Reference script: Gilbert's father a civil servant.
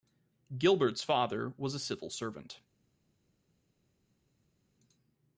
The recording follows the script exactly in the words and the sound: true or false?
false